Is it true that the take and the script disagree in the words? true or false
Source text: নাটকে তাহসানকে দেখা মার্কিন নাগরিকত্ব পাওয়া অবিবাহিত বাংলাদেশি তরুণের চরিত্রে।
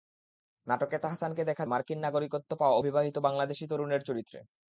false